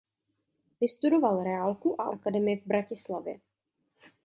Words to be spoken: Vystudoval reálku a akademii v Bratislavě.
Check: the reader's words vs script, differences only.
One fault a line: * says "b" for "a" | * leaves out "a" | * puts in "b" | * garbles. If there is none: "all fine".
all fine